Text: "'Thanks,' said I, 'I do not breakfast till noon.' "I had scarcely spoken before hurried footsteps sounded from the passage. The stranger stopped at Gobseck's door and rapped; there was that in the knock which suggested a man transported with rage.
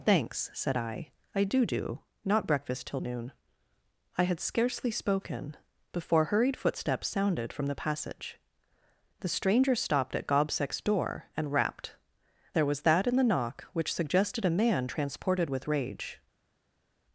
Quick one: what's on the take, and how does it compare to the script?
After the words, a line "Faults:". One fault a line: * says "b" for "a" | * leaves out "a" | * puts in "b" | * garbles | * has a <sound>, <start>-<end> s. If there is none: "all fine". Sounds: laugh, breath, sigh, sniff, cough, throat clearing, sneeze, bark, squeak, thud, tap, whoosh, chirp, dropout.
"'Thanks,' said I, 'I do do not breakfast till noon.' "I had scarcely spoken before hurried footsteps sounded from the passage. The stranger stopped at Gobseck's door and rapped; there was that in the knock which suggested a man transported with rage.
Faults:
* puts in "do"